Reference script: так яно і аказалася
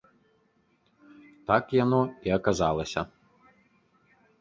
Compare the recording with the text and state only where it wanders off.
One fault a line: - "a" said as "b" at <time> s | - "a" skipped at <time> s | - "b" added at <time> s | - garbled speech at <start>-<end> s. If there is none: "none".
none